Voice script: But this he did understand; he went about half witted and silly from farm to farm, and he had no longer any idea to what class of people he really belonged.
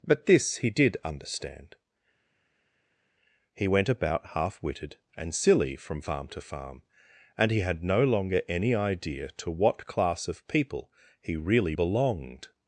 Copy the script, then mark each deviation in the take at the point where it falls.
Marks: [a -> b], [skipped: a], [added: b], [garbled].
But this he did understand; he went about half witted and silly from farm to farm, and he had no longer any idea to what class of people he really belonged.